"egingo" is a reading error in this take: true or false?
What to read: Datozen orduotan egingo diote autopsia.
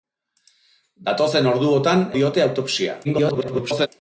true